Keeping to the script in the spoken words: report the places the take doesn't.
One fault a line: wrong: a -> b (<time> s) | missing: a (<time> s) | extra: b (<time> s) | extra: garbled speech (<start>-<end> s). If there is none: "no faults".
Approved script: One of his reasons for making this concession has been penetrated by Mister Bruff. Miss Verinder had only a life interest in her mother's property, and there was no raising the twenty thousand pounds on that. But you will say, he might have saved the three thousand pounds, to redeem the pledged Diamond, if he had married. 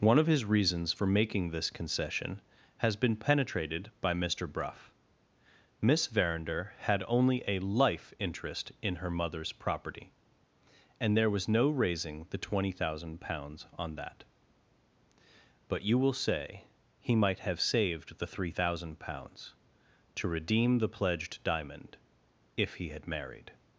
no faults